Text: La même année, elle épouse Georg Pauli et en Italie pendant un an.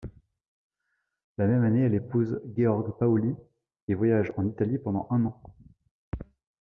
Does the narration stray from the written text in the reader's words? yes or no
yes